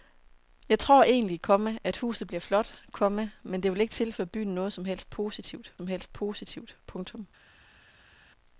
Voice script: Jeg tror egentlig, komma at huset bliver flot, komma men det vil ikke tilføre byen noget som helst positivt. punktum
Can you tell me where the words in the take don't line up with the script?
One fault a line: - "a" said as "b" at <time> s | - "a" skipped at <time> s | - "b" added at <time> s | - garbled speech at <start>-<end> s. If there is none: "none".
- "som helst positivt" added at 5.8 s